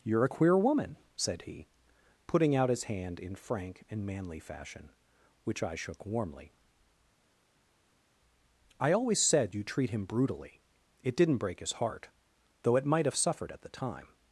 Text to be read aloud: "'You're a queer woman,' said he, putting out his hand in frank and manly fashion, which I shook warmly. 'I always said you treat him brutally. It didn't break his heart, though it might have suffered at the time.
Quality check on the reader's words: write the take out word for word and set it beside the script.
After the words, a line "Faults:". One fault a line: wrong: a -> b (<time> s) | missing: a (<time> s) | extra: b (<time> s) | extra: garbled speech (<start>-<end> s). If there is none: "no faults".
"'You're a queer woman,' said he, putting out his hand in frank and manly fashion, which I shook warmly. 'I always said you treat him brutally. It didn't break his heart, though it might have suffered at the time.
Faults:
no faults